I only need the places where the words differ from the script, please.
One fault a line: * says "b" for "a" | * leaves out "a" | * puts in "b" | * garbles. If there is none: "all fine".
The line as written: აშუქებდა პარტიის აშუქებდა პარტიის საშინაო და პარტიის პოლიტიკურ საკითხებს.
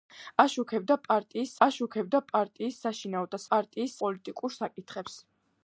all fine